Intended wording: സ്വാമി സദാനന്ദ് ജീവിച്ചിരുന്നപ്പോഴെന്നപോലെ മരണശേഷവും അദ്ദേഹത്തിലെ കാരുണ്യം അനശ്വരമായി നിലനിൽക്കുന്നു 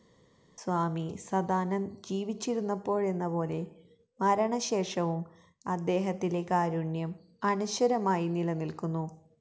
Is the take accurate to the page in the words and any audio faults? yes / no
yes